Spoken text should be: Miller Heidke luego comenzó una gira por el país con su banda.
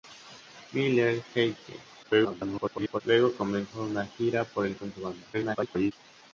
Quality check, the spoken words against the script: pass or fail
fail